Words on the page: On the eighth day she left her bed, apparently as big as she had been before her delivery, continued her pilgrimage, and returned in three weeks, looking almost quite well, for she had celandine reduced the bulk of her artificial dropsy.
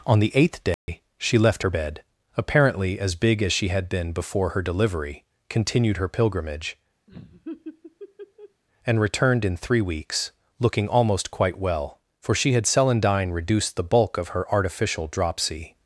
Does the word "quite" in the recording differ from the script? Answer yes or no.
no